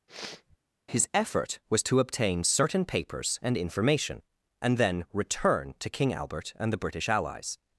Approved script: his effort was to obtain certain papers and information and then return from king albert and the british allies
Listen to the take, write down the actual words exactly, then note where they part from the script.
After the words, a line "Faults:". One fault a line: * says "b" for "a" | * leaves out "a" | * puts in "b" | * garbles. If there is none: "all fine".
his effort was to obtain certain papers and information and then return to king albert and the british allies
Faults:
* says "to" for "from"